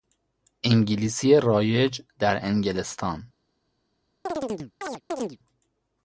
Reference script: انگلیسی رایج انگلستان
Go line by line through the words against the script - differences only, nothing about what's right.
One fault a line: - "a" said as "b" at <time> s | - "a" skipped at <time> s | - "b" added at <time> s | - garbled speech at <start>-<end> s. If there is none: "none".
- "در" added at 2.2 s